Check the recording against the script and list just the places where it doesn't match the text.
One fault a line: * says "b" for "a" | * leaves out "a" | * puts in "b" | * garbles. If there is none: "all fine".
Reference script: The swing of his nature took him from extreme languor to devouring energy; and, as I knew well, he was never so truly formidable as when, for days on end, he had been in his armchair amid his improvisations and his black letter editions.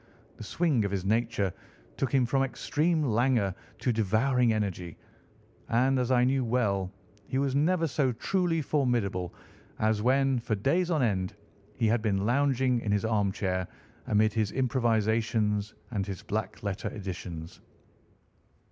* puts in "lounging"